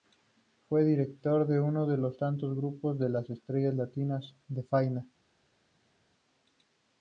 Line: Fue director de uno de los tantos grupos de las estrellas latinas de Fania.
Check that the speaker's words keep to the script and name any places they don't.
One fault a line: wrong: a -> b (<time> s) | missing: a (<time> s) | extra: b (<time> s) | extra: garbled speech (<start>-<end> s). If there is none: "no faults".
no faults